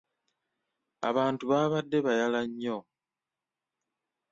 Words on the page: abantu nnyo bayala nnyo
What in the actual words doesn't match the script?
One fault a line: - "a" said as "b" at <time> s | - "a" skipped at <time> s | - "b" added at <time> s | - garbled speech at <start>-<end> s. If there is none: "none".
- "nnyo" said as "baabadde" at 1.5 s